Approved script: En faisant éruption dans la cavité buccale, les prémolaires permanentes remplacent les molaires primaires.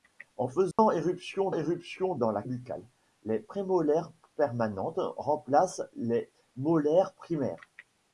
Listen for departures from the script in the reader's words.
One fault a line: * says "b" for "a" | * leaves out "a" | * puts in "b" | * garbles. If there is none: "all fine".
* puts in "éruption"
* leaves out "cavité"